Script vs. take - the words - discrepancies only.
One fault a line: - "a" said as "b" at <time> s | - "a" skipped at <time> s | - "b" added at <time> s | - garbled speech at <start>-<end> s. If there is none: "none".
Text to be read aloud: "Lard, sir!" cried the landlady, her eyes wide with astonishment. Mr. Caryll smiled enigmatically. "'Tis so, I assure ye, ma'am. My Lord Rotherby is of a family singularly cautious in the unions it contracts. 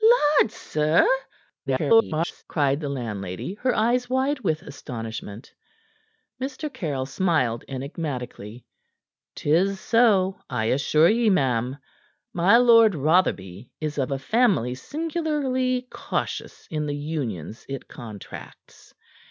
- garbled speech at 1.7-2.4 s